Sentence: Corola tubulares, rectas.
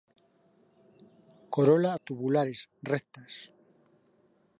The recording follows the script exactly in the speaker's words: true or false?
true